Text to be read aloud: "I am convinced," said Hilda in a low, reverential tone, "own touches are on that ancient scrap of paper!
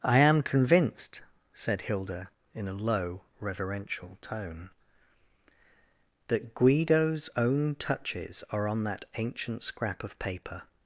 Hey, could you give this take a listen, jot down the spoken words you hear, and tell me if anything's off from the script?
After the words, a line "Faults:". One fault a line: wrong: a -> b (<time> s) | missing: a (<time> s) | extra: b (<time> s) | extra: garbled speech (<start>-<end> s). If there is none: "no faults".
"I am convinced," said Hilda in a low, reverential tone, "that Guido's own touches are on that ancient scrap of paper!
Faults:
extra: that Guido's (6.3 s)